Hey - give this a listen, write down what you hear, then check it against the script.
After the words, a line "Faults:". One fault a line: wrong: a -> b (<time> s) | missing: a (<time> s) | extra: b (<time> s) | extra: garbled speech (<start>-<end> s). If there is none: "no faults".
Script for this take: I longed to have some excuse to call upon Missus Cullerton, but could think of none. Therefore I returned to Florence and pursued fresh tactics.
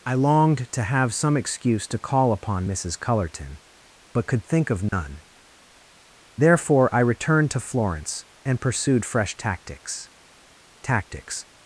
I longed to have some excuse to call upon Missus Cullerton, but could think of none. Therefore I returned to Florence and pursued fresh tactics tactics.
Faults:
extra: tactics (10.8 s)